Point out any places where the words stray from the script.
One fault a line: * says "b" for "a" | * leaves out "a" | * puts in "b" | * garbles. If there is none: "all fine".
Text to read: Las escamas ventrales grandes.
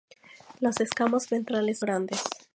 all fine